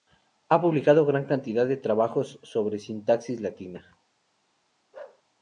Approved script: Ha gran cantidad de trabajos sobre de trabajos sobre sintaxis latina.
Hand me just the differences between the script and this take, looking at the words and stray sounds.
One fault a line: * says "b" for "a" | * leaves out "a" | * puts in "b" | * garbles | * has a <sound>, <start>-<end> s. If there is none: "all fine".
* puts in "publicado"
* leaves out "de trabajos sobre"
* has a bark, 4.9-5.2 s